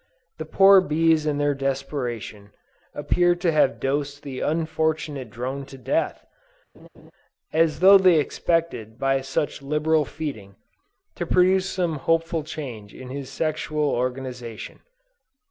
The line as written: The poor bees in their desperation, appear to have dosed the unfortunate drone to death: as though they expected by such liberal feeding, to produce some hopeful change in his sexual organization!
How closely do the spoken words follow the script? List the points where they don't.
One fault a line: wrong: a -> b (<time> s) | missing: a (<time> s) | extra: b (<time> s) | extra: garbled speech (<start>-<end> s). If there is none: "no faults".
no faults